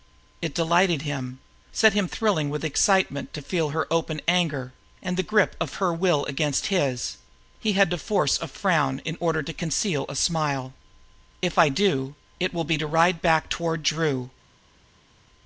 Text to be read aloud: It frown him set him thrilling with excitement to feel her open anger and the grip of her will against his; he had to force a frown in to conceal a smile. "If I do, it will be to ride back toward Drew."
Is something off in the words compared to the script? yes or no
yes